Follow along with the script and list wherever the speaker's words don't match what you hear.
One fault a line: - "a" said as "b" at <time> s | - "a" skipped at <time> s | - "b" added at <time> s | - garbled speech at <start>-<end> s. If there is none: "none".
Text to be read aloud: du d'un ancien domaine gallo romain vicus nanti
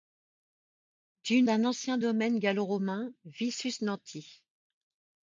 none